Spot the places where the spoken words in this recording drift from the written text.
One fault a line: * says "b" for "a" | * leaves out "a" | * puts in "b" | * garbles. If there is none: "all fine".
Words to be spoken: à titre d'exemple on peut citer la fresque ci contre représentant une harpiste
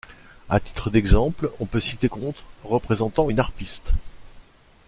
* leaves out "la fresque ci"